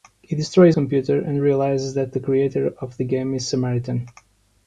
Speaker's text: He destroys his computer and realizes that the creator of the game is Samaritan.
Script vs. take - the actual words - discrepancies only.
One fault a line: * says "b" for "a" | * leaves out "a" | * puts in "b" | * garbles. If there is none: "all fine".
* leaves out "his"